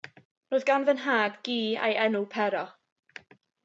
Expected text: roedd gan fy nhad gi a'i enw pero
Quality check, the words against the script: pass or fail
pass